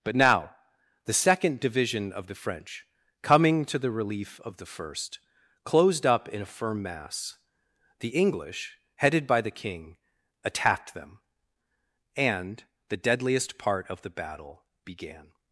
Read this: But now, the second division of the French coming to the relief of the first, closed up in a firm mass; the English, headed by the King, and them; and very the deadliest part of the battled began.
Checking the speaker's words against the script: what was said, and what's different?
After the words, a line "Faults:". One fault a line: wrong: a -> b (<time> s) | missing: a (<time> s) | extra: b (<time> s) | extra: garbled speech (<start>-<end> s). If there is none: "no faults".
But now, the second division of the French coming to the relief of the first, closed up in a firm mass; the English, headed by the King, attacked them; and the deadliest part of the battle began.
Faults:
wrong: and -> attacked (10.4 s)
missing: very (12.7 s)
wrong: battled -> battle (14.1 s)